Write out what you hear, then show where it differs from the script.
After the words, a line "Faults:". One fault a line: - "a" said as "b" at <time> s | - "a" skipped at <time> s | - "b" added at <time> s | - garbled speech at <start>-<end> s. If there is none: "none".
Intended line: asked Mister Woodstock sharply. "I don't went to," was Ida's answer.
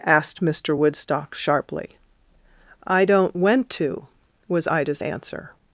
asked Mister Woodstock sharply. "I don't went to," was Ida's answer.
Faults:
none